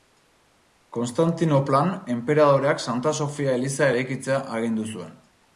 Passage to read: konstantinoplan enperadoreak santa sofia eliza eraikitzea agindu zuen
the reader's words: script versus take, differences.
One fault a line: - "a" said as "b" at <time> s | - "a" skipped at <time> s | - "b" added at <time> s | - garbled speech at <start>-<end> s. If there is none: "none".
none